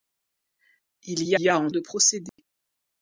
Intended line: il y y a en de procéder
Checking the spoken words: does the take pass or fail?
pass